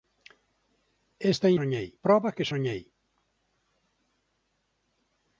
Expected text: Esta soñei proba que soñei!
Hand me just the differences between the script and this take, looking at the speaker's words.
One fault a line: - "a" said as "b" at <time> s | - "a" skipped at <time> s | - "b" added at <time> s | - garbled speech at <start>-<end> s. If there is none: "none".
none